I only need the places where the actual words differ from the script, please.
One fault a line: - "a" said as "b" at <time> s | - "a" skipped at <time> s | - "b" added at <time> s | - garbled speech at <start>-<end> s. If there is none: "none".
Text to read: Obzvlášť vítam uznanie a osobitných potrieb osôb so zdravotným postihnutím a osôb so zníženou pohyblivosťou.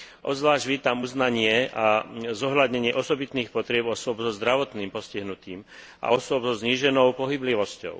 - "zohľadnenie" added at 2.3 s